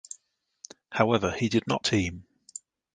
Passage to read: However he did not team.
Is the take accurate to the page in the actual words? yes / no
yes